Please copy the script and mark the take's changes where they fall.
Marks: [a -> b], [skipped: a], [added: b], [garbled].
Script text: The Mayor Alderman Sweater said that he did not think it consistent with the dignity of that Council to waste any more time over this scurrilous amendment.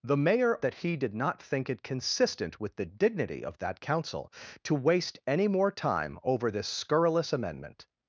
The Mayor [skipped: Alderman Sweater said] that he did not think it consistent with the dignity of that Council to waste any more time over this scurrilous amendment.